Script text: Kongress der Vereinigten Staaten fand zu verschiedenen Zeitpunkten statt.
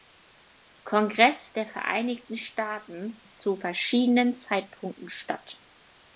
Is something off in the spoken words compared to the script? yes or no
yes